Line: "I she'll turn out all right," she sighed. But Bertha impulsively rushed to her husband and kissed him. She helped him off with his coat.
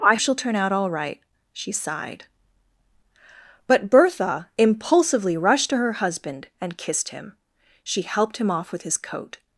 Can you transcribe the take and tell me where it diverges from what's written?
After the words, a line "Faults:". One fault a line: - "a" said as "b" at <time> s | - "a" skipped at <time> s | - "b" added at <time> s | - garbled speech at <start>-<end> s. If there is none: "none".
"I she'll turn out all right," she sighed. But Bertha impulsively rushed to her husband and kissed him. She helped him off with his coat.
Faults:
none